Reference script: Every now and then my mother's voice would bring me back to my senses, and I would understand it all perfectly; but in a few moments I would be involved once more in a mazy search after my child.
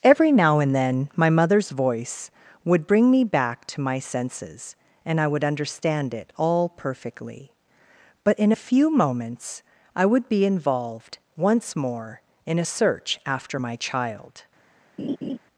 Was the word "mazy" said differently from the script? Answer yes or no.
yes